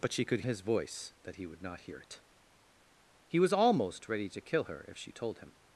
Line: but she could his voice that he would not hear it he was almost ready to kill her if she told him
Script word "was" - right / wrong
right